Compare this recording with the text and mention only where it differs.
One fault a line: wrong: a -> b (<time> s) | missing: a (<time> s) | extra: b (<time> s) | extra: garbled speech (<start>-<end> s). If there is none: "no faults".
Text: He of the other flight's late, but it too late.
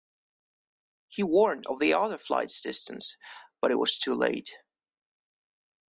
extra: warned (1.2 s)
wrong: late -> distance (2.6 s)
extra: was (3.8 s)